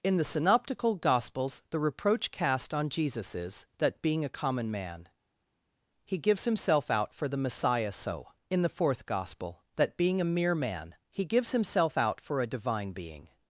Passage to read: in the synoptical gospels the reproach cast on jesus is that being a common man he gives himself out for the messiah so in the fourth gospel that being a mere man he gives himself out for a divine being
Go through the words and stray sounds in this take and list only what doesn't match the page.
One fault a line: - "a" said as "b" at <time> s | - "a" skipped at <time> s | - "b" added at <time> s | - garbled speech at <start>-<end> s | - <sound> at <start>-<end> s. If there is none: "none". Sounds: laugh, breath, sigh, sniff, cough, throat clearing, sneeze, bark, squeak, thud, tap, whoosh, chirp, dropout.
none